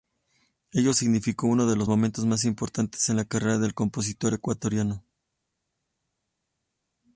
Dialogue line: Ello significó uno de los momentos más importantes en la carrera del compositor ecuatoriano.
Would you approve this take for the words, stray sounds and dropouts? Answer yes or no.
yes